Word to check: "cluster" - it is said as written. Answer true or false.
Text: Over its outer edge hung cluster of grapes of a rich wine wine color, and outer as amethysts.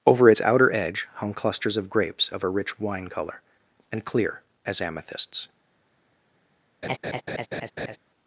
false